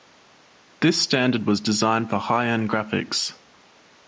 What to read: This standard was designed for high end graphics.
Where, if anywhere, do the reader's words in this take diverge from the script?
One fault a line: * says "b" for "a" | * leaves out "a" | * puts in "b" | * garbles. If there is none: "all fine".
all fine